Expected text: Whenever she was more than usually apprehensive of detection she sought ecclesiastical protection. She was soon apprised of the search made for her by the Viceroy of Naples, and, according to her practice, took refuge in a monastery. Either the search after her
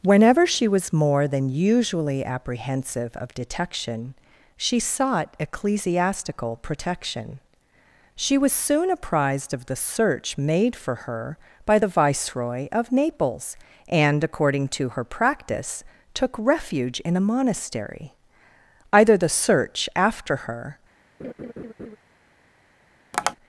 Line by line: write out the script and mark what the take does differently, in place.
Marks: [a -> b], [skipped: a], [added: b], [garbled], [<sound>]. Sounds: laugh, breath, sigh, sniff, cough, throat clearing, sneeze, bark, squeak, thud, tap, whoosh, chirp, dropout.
Whenever she was more than usually apprehensive of detection she sought ecclesiastical protection. She was soon apprised of the search made for her by the Viceroy of Naples, and, according to her practice, took refuge in a monastery. Either the search after her [laugh] [tap]